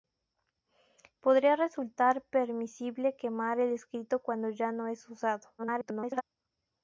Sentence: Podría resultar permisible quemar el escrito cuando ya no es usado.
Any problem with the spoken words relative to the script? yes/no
yes